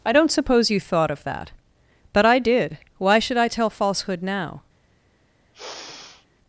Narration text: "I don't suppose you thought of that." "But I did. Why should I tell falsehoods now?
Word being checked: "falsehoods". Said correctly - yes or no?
no